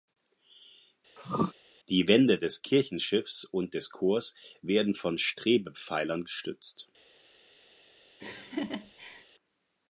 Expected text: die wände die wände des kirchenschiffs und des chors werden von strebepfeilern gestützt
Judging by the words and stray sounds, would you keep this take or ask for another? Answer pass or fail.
fail